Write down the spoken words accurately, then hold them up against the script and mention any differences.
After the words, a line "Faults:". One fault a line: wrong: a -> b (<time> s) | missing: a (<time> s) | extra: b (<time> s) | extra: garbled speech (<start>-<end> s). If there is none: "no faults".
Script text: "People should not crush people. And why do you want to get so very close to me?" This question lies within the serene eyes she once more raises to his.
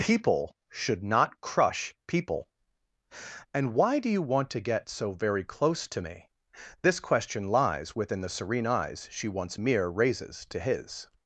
"People should not crush people. And why do you want to get so very close to me?" This question lies within the serene eyes she once mere raises to his.
Faults:
wrong: more -> mere (9.6 s)